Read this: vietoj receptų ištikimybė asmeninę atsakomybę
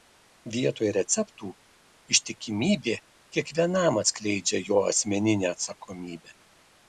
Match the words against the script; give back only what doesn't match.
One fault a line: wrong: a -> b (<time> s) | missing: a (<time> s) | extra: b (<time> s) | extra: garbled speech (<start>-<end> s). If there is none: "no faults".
extra: kiekvienam atskleidžia jo (3.4 s)